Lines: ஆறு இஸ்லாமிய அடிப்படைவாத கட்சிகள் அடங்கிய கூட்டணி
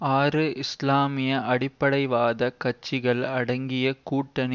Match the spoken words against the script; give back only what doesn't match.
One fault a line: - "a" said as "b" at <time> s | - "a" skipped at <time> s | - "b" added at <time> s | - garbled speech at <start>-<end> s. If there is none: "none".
none